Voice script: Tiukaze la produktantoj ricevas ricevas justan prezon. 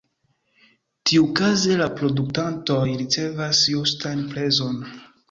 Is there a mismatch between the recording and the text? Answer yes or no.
yes